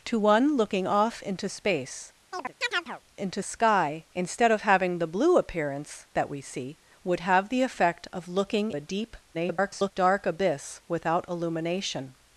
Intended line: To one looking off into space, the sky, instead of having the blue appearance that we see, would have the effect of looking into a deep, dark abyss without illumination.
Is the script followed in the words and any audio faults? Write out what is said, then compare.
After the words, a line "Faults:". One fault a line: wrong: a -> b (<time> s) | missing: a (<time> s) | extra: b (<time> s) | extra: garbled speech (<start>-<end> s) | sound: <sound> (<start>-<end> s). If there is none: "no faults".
To one looking off into space, into sky, instead of having the blue appearance that we see, would have the effect of looking a deep, [garbled] dark abyss without illumination.
Faults:
sound: chirp (2.3-3.0 s)
wrong: the -> into (3.1 s)
missing: into (8.7 s)
extra: garbled speech (9.3-9.9 s)